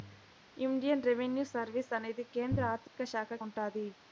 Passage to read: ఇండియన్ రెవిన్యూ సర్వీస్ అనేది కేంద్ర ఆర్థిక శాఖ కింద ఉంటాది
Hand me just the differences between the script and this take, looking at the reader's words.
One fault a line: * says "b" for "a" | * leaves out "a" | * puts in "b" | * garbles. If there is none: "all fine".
* leaves out "కింద"